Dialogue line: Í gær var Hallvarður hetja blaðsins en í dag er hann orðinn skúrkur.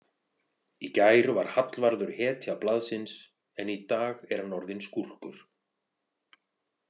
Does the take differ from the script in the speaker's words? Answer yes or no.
no